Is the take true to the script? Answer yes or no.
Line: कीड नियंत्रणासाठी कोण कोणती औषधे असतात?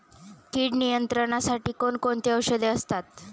yes